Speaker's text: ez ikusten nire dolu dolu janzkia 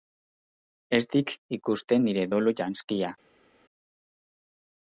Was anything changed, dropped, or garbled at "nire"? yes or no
no